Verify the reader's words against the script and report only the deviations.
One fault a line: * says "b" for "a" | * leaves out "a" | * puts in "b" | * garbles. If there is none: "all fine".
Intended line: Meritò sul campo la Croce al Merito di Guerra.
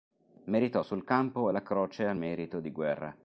all fine